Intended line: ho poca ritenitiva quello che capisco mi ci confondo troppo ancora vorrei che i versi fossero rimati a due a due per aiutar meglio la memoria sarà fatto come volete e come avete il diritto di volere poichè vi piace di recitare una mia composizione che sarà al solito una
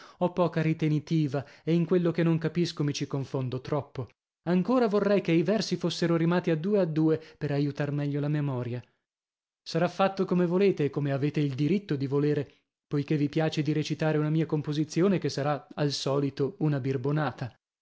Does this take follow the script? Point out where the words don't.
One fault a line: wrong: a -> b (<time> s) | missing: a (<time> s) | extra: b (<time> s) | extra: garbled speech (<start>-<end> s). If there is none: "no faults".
extra: e in (1.6 s)
extra: non (2.2 s)